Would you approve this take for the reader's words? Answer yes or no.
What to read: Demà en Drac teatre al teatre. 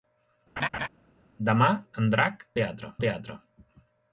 yes